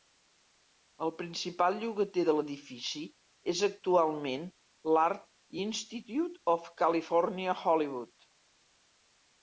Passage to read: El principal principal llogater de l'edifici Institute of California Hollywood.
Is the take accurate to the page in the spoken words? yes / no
no